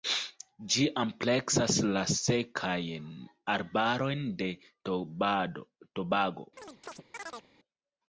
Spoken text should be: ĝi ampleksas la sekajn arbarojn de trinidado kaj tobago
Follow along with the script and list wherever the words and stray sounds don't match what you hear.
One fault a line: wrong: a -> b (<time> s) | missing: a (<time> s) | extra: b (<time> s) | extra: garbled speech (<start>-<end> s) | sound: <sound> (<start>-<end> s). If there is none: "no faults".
missing: trinidado kaj (4.5 s)
sound: chirp (6.6-7.5 s)